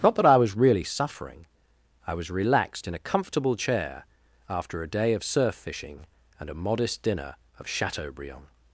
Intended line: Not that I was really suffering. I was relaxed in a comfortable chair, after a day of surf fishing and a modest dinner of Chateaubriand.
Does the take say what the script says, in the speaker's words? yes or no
yes